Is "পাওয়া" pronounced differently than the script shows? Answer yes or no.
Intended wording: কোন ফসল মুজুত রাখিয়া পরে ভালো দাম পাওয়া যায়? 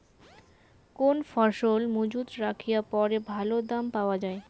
no